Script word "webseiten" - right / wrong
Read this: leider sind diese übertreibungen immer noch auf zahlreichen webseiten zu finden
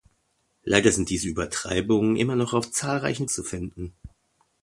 wrong